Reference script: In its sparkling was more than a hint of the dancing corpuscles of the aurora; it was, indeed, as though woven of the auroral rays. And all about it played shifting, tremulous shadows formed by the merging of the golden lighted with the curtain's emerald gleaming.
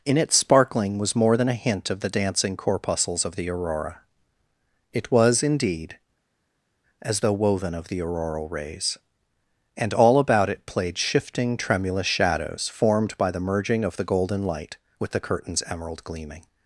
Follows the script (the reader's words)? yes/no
no